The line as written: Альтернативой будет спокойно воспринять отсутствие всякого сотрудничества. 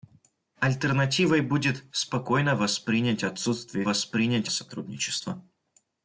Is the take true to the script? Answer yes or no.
no